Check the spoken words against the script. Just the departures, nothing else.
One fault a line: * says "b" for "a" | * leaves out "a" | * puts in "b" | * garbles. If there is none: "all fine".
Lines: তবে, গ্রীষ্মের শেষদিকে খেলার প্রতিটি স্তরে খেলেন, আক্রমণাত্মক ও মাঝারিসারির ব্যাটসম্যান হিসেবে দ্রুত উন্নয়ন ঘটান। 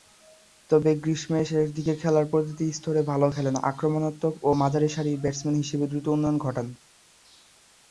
* puts in "ভালো"